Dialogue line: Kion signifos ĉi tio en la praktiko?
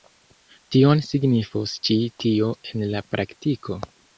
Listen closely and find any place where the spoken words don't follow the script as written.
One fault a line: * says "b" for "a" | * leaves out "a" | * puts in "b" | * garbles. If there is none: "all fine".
all fine